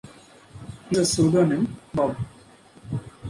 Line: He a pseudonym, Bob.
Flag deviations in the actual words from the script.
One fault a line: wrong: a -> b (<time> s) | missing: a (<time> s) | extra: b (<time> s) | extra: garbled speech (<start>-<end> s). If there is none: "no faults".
no faults